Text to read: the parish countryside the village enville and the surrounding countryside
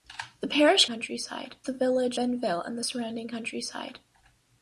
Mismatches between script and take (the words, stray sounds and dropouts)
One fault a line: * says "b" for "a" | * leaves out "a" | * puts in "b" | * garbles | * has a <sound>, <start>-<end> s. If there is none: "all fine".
all fine